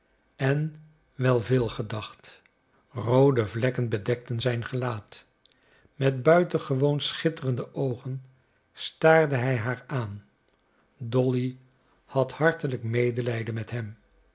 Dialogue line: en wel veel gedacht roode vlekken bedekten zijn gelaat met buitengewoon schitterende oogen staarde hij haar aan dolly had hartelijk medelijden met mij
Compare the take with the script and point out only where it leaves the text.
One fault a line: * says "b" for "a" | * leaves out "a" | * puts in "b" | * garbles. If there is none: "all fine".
* says "hem" for "mij"